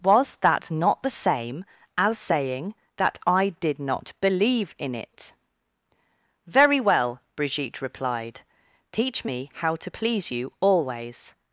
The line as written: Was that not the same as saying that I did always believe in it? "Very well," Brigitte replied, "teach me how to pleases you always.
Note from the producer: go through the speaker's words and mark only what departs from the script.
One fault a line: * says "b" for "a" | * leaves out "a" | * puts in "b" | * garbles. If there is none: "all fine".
* says "not" for "always"
* says "please" for "pleases"